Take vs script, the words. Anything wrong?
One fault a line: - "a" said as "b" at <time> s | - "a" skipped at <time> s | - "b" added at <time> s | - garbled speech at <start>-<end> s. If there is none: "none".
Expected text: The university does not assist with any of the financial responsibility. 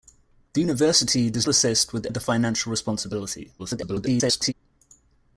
- "not" skipped at 1.5 s
- "any" skipped at 2.1 s
- garbled speech at 3.6-4.5 s